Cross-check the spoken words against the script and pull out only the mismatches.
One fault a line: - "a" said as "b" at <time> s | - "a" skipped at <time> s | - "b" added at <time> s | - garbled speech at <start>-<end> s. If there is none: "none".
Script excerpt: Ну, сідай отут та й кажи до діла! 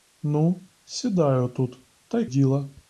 - "кажи до" skipped at 2.2 s